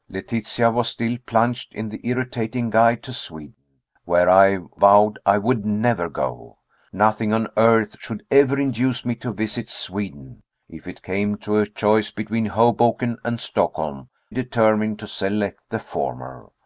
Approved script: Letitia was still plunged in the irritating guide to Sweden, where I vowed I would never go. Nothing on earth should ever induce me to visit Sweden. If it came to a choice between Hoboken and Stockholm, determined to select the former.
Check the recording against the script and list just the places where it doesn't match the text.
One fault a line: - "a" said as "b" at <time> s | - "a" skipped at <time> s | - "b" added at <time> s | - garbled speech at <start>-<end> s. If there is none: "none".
none